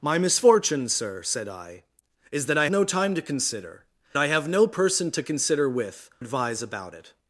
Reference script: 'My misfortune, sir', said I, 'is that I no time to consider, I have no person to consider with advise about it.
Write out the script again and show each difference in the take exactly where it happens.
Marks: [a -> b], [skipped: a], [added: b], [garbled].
'My misfortune, sir', said I, 'is that I no time to consider, I have no person to consider with advise about it.